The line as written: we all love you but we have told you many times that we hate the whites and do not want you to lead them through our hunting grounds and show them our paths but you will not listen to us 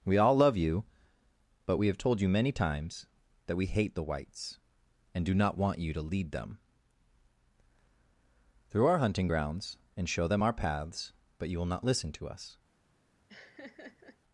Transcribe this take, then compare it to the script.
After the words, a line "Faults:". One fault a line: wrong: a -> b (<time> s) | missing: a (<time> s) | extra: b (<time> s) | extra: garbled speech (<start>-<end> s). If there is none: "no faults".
we all love you but we have told you many times that we hate the whites and do not want you to lead them through our hunting grounds and show them our paths but you will not listen to us
Faults:
no faults